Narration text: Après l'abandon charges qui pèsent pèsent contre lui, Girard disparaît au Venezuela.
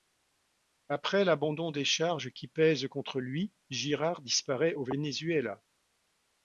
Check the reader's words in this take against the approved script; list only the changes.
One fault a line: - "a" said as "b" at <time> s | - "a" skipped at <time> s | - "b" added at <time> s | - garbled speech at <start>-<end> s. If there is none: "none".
- "des" added at 1.7 s
- "pèsent" skipped at 2.9 s